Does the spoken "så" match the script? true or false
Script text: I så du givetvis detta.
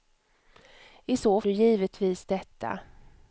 true